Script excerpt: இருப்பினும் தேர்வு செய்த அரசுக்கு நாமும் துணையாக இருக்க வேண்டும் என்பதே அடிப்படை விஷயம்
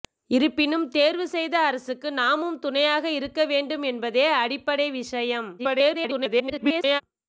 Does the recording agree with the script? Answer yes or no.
no